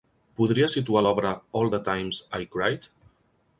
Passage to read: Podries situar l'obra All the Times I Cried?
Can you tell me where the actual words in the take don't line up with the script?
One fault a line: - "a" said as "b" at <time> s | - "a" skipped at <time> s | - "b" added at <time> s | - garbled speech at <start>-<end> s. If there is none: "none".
none